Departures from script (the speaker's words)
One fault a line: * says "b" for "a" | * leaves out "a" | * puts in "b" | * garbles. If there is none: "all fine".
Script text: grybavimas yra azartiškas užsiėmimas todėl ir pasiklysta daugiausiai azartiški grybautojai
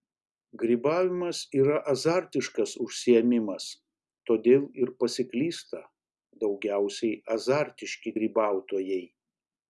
all fine